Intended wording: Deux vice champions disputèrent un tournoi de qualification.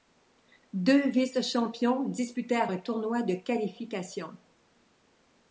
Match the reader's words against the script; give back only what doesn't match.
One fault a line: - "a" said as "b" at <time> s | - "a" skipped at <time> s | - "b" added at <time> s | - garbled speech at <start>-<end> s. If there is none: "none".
none